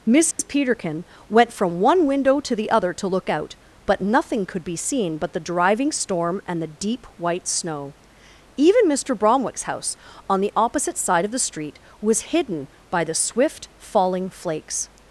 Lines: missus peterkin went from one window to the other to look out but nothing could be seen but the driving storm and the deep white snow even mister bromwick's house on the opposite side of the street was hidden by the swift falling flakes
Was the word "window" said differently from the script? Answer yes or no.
no